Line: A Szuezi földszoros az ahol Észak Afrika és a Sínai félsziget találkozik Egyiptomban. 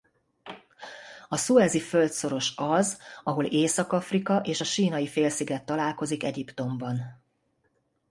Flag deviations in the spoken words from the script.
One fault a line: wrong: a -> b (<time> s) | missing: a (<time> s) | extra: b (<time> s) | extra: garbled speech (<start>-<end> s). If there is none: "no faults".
no faults